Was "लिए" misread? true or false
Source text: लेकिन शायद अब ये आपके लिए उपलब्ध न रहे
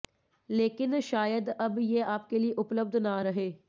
false